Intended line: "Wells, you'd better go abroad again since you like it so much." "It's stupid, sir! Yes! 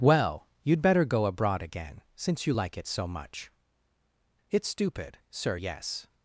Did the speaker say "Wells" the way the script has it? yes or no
no